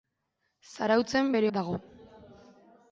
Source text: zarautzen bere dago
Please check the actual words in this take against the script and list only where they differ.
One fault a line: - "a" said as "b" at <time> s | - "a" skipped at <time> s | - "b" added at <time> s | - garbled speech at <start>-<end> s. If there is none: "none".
none